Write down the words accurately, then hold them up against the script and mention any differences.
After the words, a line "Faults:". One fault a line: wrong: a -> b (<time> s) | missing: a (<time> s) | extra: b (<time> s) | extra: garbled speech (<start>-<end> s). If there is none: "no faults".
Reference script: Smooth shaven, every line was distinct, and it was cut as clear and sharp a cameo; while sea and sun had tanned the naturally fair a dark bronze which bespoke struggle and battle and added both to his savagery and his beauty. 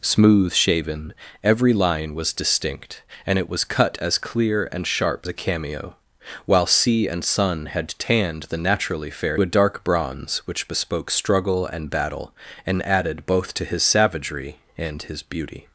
Smooth shaven, every line was distinct, and it was cut as clear and sharp a cameo; while sea and sun had tanned the naturally fair a dark bronze which bespoke struggle and battle and added both to his savagery and his beauty.
Faults:
no faults